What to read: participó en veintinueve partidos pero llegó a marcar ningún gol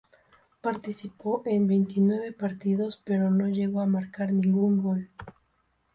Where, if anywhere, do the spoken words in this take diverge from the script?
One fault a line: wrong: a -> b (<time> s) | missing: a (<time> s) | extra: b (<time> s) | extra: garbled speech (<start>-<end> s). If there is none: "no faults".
extra: no (3.3 s)